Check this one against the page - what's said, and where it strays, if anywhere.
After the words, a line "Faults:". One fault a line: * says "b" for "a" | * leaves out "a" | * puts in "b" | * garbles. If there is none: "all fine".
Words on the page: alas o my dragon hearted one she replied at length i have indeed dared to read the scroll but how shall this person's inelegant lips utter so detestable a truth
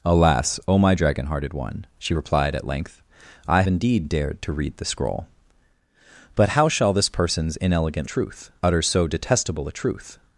alas o my dragon hearted one she replied at length i indeed dared to read the scroll but how shall this person's inelegant truth utter so detestable a truth
Faults:
* leaves out "have"
* says "truth" for "lips"